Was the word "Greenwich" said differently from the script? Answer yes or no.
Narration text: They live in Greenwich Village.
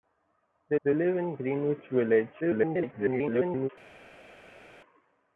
no